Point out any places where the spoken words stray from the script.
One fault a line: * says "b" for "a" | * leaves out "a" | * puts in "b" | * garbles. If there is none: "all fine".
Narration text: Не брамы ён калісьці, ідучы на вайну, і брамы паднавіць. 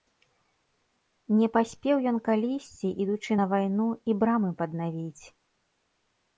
* says "паспеў" for "брамы"